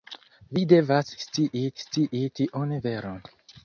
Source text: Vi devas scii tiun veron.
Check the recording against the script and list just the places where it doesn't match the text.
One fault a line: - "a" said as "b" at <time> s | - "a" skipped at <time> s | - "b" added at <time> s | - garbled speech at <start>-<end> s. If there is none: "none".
- "scii" added at 1.8 s